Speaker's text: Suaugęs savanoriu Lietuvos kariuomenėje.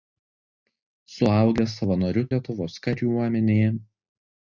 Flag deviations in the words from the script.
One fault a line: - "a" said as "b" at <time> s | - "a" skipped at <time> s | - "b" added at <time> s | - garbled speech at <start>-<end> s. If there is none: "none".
none